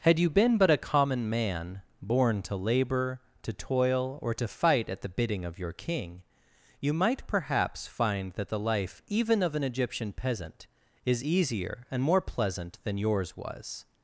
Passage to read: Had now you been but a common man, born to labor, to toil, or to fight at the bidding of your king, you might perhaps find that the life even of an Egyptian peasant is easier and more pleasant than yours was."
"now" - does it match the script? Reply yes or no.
no